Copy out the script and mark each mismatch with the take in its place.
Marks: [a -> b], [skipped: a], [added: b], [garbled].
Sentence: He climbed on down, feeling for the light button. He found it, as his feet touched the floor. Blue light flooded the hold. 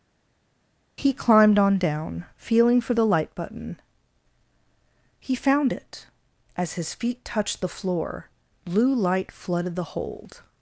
He climbed on down, feeling for the light button. He found it, as his feet touched the floor. Blue light flooded the hold.